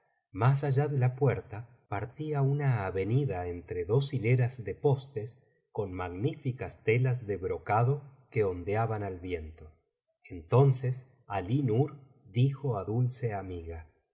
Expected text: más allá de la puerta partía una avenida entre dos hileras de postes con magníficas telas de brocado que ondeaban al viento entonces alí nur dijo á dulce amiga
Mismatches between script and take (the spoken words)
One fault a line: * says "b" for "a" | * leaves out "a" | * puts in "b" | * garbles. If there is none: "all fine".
all fine